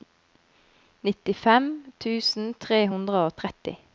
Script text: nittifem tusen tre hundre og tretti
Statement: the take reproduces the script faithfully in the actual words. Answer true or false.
true